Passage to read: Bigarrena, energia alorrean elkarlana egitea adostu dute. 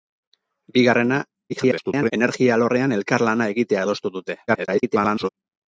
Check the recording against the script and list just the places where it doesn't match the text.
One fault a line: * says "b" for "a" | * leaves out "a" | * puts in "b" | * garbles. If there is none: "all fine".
* garbles
* garbles